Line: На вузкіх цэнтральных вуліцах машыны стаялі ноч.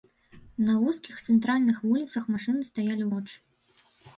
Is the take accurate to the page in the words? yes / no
yes